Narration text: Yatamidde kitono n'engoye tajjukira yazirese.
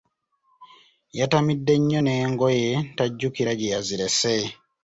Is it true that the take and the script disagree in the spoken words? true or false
true